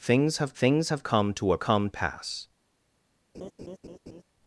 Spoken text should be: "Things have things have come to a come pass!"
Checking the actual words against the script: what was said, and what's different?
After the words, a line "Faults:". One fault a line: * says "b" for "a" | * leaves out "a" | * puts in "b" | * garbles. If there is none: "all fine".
"Things have things have come to a come pass!"
Faults:
all fine